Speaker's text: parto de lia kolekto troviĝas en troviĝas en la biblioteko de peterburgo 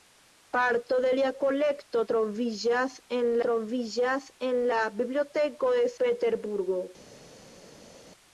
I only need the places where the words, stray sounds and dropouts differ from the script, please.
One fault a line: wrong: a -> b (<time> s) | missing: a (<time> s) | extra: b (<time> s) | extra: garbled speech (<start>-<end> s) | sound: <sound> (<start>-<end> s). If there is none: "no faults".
no faults